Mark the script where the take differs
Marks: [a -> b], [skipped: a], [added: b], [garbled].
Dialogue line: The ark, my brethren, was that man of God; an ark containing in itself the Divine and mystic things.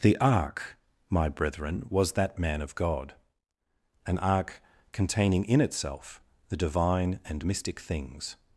The ark, my brethren, was that man of God; an ark containing in itself the Divine and mystic things.